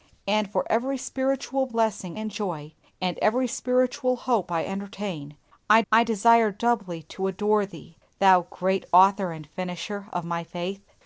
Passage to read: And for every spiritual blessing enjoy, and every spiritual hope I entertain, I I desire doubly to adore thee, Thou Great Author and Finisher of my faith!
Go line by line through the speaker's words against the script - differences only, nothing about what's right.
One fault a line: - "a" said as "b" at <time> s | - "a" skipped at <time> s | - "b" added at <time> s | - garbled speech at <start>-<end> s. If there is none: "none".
none